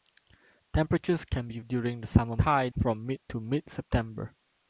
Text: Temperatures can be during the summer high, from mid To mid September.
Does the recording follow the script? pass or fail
pass